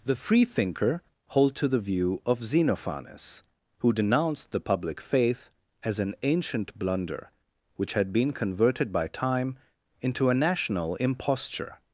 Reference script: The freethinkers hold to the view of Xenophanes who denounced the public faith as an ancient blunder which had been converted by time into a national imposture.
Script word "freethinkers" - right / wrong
wrong